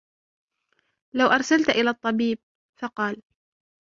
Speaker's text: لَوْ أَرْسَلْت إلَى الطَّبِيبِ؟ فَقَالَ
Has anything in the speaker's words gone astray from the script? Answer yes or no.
no